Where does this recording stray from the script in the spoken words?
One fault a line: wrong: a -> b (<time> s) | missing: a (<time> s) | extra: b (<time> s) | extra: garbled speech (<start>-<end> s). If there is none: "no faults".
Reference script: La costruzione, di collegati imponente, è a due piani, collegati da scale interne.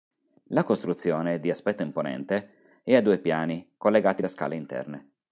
wrong: collegati -> aspetto (1.5 s)